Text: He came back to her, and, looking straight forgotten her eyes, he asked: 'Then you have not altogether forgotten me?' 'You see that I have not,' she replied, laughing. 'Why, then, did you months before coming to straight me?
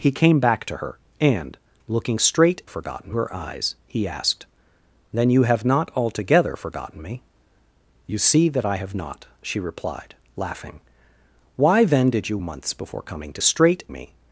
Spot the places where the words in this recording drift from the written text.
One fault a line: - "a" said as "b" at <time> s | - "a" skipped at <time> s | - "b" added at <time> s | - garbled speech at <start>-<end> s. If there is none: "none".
none